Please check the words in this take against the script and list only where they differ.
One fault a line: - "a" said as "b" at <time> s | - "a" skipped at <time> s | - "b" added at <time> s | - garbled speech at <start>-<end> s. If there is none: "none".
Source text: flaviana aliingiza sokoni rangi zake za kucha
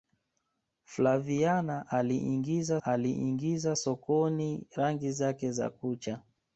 - "aliingiza" added at 2.8 s